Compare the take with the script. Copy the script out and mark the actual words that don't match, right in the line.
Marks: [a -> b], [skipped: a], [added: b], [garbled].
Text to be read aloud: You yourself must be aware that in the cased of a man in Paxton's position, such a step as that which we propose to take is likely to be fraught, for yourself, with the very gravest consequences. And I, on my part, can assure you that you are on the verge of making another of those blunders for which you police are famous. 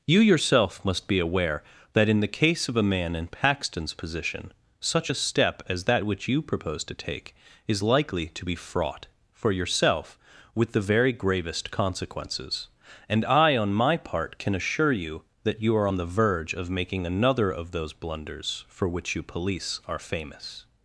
You yourself must be aware that in the [cased -> case] of a man in Paxton's position, such a step as that which [we -> you] propose to take is likely to be fraught, for yourself, with the very gravest consequences. And I, on my part, can assure you that you are on the verge of making another of those blunders for which you police are famous.